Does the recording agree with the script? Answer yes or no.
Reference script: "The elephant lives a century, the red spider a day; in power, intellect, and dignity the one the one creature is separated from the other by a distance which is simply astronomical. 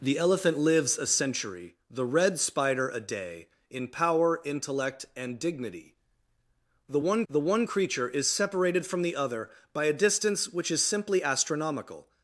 yes